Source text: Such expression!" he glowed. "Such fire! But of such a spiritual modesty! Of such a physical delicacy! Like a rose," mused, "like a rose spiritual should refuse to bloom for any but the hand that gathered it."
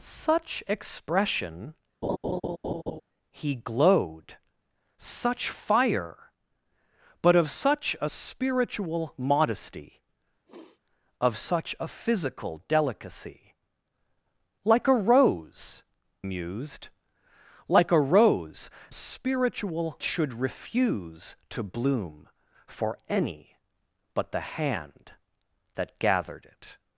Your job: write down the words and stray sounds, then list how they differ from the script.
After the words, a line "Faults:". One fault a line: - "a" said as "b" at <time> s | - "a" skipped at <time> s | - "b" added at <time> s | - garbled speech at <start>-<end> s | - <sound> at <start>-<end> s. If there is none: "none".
Such expression!" he glowed. "Such fire! But of such a spiritual modesty! Of such a physical delicacy! Like a rose," mused, "like a rose spiritual should refuse to bloom for any but the hand that gathered it."
Faults:
- laugh at 2.0-3.0 s
- sniff at 10.5-10.8 s